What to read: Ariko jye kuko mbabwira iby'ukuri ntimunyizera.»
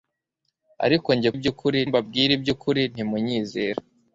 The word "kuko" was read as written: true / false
false